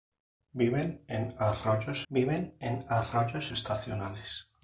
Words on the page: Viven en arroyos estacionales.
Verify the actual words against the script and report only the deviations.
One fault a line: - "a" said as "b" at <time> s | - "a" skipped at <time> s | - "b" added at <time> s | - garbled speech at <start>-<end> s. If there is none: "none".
- "viven en arroyos" added at 2.1 s